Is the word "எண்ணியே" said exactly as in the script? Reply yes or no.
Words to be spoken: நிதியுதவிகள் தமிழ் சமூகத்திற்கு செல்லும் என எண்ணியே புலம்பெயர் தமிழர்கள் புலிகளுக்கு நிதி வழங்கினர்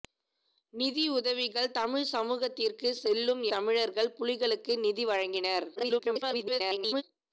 no